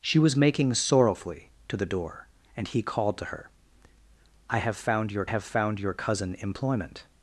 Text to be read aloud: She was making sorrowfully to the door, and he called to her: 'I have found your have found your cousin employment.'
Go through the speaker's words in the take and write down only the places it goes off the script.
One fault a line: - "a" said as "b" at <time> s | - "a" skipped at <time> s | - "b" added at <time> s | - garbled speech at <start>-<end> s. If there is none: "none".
none